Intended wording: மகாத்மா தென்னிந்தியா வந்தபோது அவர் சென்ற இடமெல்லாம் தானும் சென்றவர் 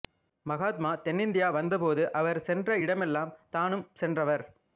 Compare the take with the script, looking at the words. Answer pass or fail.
pass